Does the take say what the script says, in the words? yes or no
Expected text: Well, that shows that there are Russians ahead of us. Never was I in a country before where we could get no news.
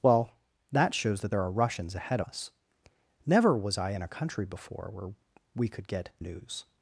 no